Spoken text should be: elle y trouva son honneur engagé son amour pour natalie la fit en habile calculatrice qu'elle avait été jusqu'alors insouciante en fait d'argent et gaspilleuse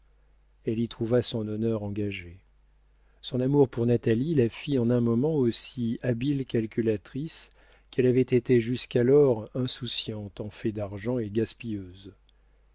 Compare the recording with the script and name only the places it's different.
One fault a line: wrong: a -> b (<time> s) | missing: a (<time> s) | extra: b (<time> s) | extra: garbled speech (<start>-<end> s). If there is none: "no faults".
extra: un moment aussi (4.9 s)